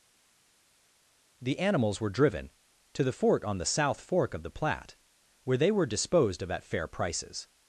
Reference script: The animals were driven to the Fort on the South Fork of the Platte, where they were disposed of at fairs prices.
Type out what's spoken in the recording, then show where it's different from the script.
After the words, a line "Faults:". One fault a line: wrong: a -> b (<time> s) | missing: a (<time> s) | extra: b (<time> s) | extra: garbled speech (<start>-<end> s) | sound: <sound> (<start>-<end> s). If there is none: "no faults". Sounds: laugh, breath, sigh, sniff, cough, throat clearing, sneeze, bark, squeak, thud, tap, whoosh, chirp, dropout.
The animals were driven to the Fort on the South Fork of the Platte, where they were disposed of at fair prices.
Faults:
wrong: fairs -> fair (6.6 s)